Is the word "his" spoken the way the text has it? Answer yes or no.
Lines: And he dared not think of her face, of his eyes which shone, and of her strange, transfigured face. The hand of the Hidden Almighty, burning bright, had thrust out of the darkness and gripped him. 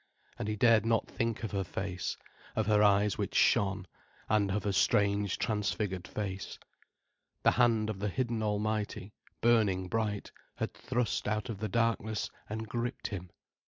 no